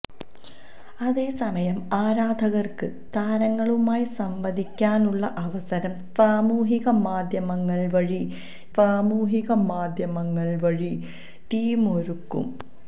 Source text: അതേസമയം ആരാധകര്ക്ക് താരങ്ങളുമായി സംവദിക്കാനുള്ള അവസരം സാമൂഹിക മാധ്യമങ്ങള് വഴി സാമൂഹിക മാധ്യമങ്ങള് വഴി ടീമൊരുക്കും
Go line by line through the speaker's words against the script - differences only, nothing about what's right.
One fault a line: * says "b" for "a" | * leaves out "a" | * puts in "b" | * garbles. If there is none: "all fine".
all fine